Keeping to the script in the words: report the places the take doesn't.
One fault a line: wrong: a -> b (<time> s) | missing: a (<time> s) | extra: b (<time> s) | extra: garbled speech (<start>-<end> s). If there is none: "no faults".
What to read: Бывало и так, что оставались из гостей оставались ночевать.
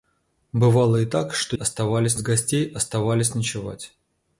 no faults